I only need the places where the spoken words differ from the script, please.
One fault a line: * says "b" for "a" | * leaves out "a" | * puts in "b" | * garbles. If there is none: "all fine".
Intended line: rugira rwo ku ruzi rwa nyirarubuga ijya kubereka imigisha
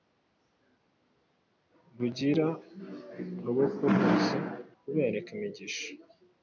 * leaves out "rwa nyirarubuga ijya"